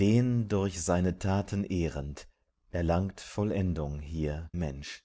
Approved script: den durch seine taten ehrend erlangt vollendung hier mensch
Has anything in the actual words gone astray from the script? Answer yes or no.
no